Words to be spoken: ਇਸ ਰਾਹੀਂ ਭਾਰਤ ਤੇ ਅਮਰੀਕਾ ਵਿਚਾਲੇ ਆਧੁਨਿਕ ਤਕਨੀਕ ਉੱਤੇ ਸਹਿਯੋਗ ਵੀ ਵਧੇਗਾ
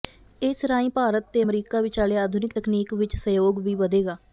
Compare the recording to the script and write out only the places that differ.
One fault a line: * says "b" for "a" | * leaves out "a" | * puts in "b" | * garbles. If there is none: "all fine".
* says "ਵਿੱਚ" for "ਉੱਤੇ"